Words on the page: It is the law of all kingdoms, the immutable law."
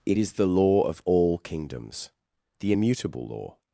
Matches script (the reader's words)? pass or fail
pass